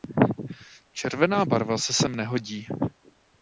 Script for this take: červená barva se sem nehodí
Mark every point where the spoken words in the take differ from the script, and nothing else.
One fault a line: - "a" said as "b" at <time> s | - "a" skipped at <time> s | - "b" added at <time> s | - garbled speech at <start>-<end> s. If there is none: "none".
none